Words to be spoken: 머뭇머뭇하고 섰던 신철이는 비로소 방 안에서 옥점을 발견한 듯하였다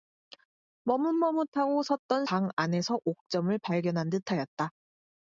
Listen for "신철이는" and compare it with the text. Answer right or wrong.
wrong